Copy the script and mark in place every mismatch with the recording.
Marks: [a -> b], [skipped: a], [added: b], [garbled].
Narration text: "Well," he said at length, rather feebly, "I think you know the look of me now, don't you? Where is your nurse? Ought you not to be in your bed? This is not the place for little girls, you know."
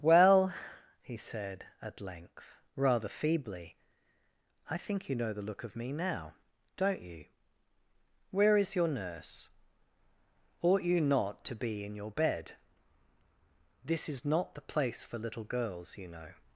"Well," he said at length, rather feebly, "I think you know the look of me now, don't you? Where is your nurse? Ought you not to be in your bed? This is not the place for little girls, you know."